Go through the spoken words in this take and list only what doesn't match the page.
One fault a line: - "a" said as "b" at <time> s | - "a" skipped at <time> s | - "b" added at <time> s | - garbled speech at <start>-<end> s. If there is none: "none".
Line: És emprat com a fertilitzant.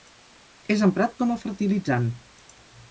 none